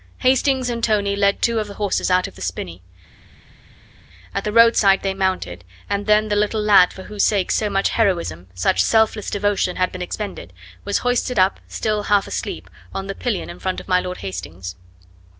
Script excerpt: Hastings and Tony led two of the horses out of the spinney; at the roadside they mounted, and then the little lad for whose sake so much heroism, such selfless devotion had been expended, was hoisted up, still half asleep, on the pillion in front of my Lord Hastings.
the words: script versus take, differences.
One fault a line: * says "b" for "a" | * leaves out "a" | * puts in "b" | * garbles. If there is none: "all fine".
all fine